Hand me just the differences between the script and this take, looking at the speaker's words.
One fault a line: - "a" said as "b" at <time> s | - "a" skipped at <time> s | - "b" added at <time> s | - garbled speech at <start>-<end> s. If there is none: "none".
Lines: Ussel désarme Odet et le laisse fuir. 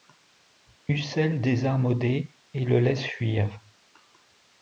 none